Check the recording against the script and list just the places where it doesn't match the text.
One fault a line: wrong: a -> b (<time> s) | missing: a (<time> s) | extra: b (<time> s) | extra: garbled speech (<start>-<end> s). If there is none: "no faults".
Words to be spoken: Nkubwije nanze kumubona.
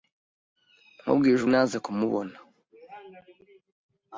no faults